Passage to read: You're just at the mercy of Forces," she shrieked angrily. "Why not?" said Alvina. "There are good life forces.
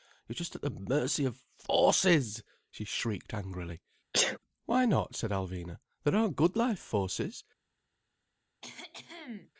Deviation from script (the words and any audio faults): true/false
true